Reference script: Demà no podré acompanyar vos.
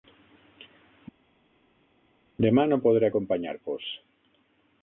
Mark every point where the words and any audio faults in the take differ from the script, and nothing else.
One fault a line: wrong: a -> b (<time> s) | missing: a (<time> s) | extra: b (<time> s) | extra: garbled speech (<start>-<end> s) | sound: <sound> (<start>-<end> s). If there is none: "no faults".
no faults